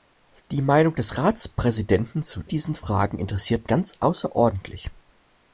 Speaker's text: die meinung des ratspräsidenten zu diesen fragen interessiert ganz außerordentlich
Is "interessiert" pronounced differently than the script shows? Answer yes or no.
no